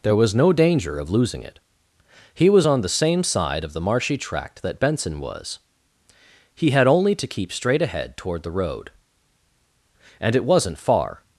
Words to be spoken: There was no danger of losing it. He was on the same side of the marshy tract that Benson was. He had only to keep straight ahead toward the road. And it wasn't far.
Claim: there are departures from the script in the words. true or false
false